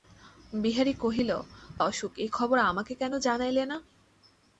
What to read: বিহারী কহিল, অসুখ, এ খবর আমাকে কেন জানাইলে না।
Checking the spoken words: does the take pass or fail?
pass